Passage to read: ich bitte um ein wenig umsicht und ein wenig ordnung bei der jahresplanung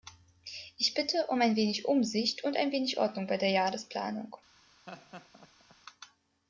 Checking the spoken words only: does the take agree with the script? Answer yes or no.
yes